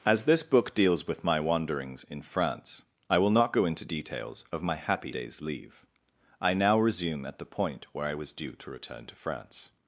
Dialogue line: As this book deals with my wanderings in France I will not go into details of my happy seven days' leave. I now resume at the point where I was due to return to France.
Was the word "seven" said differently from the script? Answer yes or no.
yes